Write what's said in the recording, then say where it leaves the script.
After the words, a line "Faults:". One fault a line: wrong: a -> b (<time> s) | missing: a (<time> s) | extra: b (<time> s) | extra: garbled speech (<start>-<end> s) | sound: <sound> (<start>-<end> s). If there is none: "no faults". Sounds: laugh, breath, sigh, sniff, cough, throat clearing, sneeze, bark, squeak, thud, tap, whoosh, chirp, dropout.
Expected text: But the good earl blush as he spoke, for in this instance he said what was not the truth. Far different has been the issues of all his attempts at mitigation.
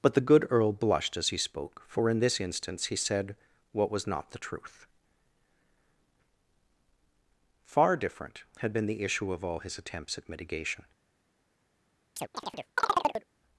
But the good earl blushed as he spoke, for in this instance he said what was not the truth. Far different had been the issue of all his attempts at mitigation.
Faults:
wrong: blush -> blushed (0.7 s)
wrong: has -> had (8.6 s)
wrong: issues -> issue (9.0 s)
sound: chirp (12.2-13.3 s)